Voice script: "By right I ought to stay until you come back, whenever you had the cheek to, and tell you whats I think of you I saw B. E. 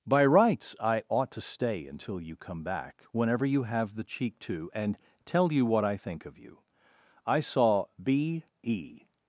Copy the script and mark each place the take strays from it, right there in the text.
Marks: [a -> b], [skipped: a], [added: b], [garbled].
"By [right -> rights] I ought to stay until you come back, whenever you [had -> have] the cheek to, and tell you [whats -> what] I think of you I saw B. E.